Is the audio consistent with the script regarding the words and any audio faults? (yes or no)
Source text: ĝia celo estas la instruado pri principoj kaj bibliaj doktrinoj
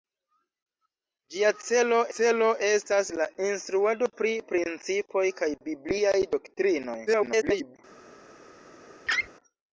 no